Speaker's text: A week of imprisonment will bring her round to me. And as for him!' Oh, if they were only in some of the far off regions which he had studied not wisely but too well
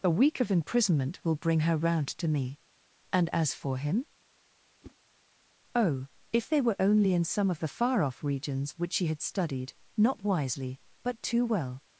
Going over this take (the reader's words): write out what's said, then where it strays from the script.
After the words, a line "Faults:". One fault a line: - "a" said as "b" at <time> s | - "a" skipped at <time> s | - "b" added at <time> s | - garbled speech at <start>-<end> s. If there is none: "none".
A week of imprisonment will bring her round to me. And as for him!' Oh, if they were only in some of the far off regions which she had studied not wisely but too well
Faults:
- "he" said as "she" at 8.9 s